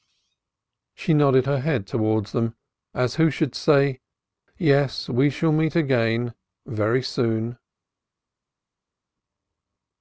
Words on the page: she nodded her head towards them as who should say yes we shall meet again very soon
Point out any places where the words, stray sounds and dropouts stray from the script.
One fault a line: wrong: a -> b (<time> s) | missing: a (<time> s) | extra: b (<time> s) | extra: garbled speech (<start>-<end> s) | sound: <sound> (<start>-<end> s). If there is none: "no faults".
no faults